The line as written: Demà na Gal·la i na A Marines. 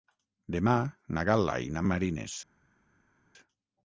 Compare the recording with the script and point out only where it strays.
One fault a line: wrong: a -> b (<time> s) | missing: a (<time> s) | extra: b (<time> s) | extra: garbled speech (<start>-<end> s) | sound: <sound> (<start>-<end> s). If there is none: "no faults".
no faults